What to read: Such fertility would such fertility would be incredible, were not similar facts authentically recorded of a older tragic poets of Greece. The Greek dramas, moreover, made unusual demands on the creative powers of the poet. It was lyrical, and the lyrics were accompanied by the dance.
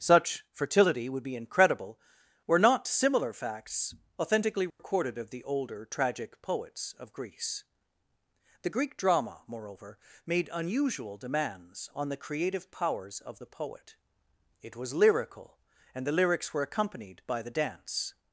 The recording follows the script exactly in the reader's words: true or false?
false